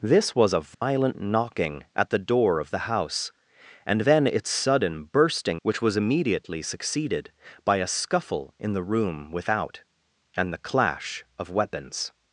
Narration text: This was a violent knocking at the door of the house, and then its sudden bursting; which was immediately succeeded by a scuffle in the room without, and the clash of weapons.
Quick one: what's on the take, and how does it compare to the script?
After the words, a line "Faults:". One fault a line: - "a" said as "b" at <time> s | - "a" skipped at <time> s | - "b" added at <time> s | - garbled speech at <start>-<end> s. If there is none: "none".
This was a violent knocking at the door of the house, and then its sudden bursting; which was immediately succeeded by a scuffle in the room without, and the clash of weapons.
Faults:
none